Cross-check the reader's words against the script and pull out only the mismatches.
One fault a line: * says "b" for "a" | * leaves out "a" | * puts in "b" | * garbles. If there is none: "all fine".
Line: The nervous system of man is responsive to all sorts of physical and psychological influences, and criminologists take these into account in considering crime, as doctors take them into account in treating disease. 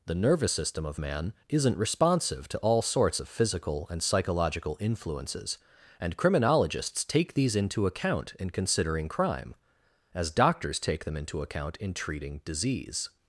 * says "isn't" for "is"